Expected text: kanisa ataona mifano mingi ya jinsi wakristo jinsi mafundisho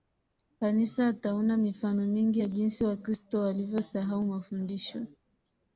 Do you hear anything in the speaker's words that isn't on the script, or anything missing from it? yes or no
yes